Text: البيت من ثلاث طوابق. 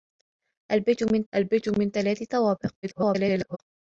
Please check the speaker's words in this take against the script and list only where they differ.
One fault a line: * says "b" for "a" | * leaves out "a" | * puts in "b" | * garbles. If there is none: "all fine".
* puts in "البيت من"
* garbles